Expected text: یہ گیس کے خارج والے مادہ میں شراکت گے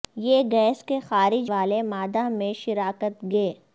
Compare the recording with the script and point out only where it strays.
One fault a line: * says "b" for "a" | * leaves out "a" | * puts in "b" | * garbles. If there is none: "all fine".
all fine